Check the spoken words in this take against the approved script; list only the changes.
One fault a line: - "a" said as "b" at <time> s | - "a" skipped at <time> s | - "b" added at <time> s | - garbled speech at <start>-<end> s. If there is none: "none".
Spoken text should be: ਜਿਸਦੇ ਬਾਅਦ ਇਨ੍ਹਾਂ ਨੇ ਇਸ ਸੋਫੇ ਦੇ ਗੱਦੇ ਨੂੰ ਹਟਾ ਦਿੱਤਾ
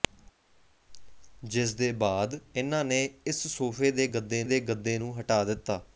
- "ਦੇ ਗੱਦੇ" added at 4.4 s